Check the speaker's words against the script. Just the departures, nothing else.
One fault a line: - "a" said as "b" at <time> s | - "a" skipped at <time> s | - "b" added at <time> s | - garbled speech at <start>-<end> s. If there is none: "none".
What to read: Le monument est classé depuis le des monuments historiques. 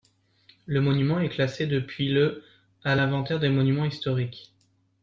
- "à l'inventaire" added at 2.8 s